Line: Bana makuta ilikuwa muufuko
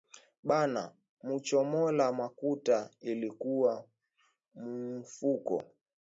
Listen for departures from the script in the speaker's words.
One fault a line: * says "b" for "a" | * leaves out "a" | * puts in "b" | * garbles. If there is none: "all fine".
* puts in "muchomola"